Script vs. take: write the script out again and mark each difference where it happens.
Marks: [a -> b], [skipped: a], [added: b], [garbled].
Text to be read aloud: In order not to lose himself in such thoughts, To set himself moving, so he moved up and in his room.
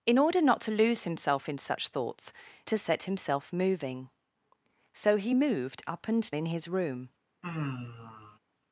In order not to lose himself in such thoughts, To set himself moving, so he moved up and in his room.